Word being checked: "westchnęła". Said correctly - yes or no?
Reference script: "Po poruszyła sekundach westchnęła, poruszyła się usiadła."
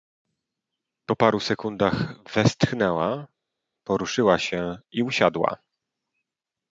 yes